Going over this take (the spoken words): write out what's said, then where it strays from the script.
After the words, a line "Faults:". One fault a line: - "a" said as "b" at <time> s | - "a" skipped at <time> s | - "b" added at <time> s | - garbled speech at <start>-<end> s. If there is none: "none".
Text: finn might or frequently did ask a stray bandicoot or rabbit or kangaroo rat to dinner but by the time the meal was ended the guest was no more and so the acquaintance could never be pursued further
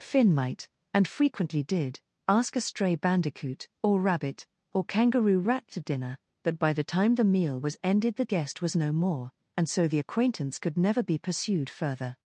finn might and frequently did ask a stray bandicoot or rabbit or kangaroo rat to dinner but by the time the meal was ended the guest was no more and so the acquaintance could never be pursued further
Faults:
- "or" said as "and" at 0.9 s